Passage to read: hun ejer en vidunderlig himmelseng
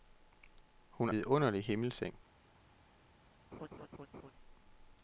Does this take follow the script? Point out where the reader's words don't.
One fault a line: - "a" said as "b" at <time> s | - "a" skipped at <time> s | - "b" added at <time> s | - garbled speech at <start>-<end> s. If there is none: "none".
- "ejer en" skipped at 1.1 s